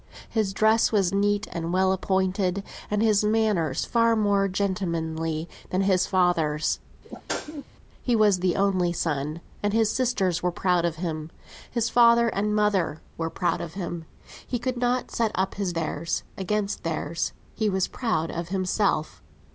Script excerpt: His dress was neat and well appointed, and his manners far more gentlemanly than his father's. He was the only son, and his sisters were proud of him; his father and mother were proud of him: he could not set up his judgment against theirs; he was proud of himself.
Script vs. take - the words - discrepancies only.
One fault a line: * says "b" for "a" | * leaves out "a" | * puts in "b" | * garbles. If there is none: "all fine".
* says "theirs" for "judgment"